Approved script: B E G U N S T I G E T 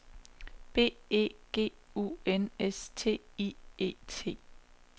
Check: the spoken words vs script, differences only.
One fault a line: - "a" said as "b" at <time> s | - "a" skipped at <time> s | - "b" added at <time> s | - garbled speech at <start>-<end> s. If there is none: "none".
- "G" skipped at 3.5 s